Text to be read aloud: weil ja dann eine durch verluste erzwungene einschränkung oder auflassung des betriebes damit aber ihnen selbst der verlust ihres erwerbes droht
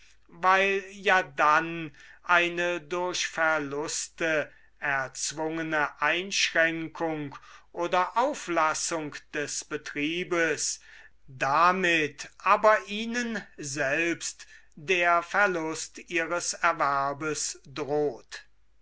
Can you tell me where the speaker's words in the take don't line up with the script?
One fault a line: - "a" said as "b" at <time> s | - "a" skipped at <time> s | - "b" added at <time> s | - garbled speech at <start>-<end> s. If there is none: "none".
none